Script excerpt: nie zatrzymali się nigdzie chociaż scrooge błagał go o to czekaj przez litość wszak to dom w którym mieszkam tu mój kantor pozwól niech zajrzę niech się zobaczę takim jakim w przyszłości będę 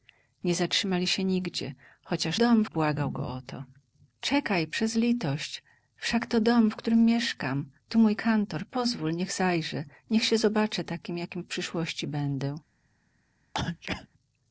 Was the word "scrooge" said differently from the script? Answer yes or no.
yes